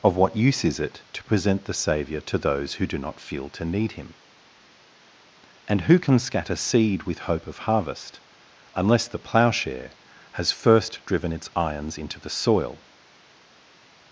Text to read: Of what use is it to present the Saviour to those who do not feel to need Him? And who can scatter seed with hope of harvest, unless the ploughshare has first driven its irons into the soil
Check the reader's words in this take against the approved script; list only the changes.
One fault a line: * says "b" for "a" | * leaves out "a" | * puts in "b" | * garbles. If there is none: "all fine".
all fine